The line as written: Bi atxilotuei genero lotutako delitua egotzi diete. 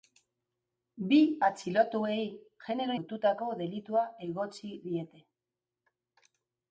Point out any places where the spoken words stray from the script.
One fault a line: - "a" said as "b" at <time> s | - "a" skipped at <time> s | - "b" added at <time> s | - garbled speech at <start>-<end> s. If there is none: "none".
none